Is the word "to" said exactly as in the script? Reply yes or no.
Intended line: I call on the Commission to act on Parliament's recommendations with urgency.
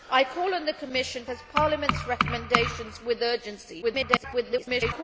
no